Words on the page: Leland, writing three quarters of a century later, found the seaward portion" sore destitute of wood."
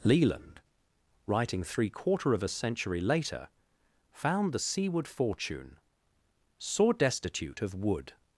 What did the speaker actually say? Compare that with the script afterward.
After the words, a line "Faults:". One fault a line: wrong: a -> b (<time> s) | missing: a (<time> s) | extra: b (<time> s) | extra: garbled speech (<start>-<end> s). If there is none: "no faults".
Leland, writing three quarter of a century later, found the seaward fortune" sore destitute of wood."
Faults:
wrong: quarters -> quarter (1.9 s)
wrong: portion -> fortune (5.1 s)